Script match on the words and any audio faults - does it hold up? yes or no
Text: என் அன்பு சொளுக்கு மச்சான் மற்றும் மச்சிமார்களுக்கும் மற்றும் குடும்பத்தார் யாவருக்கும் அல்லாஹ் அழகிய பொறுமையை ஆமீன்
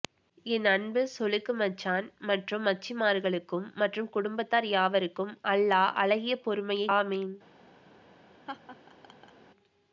no